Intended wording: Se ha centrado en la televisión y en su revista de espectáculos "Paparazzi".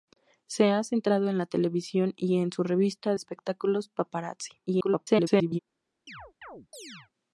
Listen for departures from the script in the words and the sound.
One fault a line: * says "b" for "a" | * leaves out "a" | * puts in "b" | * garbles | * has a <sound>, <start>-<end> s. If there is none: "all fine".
* leaves out "de"
* garbles
* has a chirp, 6.1-7.1 s